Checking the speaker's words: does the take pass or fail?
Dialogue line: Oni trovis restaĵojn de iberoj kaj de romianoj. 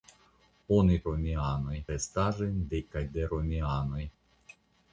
fail